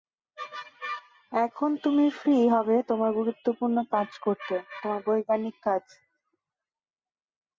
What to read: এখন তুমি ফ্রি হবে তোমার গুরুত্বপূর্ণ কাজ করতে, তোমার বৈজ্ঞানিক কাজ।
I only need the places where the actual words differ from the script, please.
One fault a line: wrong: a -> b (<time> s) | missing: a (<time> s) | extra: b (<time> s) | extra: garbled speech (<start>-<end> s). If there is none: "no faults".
no faults